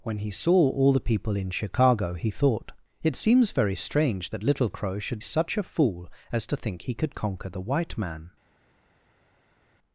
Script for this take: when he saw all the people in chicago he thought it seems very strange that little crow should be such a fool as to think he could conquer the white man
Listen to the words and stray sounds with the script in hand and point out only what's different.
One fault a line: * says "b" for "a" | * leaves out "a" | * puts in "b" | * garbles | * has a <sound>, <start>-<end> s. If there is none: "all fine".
* leaves out "be"